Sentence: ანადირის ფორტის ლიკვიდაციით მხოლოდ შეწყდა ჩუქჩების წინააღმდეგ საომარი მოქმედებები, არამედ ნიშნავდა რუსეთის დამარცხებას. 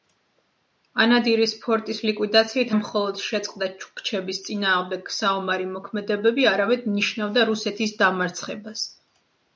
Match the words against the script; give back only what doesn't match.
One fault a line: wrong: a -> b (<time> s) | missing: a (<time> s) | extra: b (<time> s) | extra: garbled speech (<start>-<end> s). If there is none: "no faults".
no faults